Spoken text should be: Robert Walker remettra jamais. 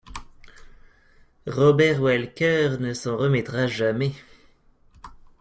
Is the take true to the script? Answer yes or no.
no